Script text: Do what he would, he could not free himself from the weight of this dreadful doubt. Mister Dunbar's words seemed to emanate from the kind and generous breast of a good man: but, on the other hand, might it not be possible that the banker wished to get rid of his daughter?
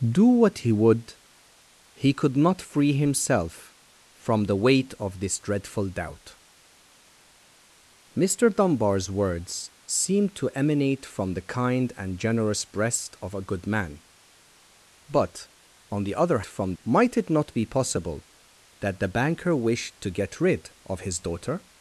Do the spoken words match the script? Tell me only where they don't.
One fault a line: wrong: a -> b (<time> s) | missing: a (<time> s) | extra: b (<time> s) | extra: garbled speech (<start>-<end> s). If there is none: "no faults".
wrong: hand -> from (16.5 s)